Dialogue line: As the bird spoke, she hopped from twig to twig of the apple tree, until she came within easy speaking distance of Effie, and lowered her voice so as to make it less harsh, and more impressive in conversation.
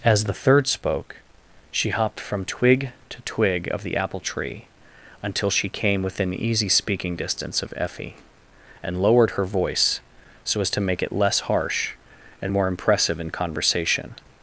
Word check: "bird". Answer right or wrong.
wrong